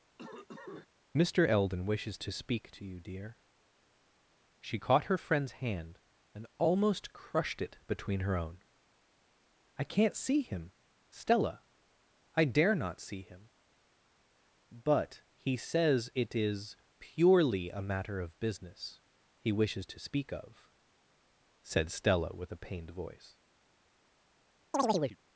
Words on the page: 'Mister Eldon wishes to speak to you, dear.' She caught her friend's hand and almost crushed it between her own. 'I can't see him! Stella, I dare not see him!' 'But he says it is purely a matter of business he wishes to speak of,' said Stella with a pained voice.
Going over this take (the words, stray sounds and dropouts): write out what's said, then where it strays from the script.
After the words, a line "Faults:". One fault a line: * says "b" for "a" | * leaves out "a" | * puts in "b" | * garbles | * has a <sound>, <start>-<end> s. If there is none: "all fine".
'Mister Eldon wishes to speak to you, dear.' She caught her friend's hand and almost crushed it between her own. 'I can't see him! Stella, I dare not see him!' 'But he says it is purely a matter of business he wishes to speak of,' said Stella with a pained voice.
Faults:
* has a cough, 0.2-0.9 s
* has a chirp, 24.7-25.2 s